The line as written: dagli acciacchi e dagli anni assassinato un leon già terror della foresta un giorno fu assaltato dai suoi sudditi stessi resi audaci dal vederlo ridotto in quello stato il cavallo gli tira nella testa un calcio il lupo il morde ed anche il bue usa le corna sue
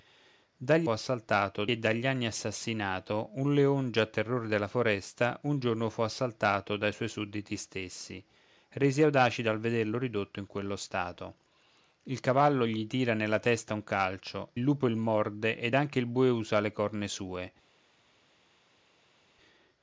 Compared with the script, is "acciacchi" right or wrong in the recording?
wrong